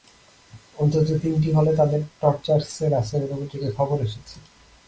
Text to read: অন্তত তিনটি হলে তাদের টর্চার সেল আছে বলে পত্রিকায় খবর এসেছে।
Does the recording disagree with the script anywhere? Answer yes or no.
no